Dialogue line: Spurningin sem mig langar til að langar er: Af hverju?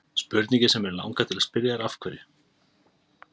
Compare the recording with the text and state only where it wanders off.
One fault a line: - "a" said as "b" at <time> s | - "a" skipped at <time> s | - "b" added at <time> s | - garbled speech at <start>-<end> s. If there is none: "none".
- "langar" said as "spyrja" at 1.5 s